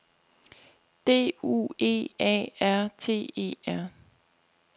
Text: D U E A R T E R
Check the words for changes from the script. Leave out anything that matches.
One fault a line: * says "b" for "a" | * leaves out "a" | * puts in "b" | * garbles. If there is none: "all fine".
all fine